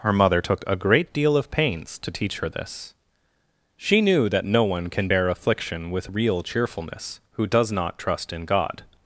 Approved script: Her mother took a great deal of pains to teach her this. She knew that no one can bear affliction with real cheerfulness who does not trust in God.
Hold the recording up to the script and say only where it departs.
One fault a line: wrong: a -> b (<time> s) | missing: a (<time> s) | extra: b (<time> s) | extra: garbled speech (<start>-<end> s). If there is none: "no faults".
no faults